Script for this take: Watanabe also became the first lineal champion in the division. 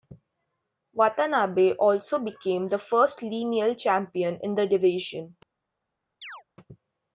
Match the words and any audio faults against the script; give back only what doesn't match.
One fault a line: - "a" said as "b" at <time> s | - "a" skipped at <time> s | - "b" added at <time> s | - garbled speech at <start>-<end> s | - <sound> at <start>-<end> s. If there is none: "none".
- chirp at 6.2-6.4 s